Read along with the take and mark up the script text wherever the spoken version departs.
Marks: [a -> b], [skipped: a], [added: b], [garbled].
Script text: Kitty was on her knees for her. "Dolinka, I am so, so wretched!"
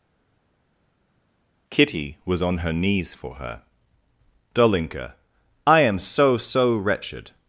Kitty was on her knees for her. "Dolinka, I am so, so wretched!"